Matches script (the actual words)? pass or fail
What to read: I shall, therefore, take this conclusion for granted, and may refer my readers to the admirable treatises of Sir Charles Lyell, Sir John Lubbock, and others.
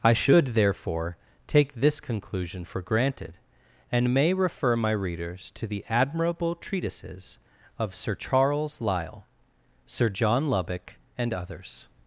fail